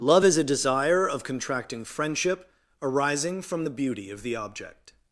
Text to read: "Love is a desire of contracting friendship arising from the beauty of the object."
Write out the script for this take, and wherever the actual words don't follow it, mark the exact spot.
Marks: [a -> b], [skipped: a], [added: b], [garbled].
"Love is a desire of contracting friendship arising from the beauty of the object."